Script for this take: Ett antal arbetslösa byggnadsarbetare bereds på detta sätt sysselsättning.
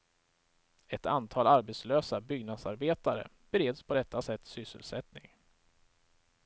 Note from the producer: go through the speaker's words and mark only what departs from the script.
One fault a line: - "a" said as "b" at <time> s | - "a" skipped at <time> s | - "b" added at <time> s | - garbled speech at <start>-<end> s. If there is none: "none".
none